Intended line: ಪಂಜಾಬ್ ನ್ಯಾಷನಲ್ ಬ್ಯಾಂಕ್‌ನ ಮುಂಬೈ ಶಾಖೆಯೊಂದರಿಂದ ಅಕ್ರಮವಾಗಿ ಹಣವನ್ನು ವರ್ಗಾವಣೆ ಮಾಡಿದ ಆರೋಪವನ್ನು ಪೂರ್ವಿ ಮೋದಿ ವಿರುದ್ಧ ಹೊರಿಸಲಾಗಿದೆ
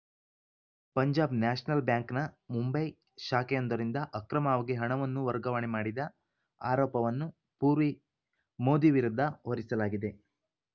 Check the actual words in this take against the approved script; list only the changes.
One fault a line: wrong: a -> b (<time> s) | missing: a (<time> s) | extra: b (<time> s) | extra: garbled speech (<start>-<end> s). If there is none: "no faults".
no faults